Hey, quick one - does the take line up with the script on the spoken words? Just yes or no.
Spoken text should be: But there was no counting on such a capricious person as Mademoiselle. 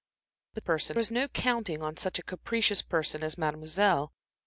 no